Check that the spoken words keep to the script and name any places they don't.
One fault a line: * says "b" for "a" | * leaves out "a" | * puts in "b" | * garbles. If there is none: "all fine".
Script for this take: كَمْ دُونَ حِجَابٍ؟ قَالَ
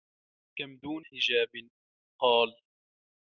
all fine